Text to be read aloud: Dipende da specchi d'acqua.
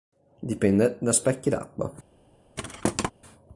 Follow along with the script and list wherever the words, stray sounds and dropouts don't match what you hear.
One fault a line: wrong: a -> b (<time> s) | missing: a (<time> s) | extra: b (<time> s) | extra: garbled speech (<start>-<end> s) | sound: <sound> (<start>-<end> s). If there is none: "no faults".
sound: thud (2.6-3.1 s)